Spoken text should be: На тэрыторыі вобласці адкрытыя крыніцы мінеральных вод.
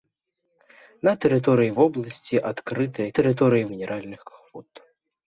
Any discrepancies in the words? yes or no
yes